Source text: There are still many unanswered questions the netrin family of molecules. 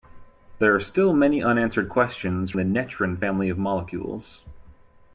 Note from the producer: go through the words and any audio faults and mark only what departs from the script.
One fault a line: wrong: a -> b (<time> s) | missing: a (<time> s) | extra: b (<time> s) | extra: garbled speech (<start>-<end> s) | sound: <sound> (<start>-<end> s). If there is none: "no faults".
no faults